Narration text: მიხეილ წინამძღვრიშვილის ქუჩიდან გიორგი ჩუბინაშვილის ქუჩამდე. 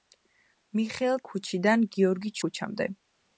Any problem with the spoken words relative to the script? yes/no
yes